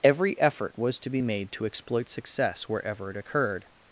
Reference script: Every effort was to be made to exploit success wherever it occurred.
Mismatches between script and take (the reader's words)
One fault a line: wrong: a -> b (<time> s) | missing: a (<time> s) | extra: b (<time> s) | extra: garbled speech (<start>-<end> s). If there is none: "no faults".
no faults